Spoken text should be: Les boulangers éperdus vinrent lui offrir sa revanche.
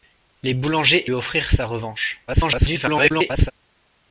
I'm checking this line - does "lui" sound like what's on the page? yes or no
no